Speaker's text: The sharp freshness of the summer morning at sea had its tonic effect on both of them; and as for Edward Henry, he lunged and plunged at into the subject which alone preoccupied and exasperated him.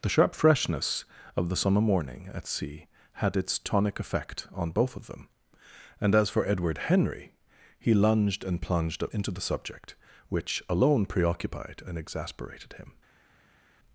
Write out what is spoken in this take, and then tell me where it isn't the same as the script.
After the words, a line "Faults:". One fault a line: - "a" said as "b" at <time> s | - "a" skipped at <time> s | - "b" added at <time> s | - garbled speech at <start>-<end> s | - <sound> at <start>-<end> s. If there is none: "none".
The sharp freshness of the summer morning at sea had its tonic effect on both of them; and as for Edward Henry, he lunged and plunged at into the subject which alone preoccupied and exasperated him.
Faults:
none